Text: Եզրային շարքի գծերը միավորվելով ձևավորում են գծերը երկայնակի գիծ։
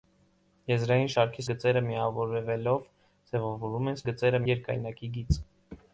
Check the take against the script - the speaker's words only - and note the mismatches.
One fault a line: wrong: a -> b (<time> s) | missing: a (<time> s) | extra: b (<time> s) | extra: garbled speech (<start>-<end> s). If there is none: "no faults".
no faults